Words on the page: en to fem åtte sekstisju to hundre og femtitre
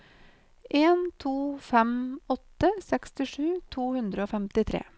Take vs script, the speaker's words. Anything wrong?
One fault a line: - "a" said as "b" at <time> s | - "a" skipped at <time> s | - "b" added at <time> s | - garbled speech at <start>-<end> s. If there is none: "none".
none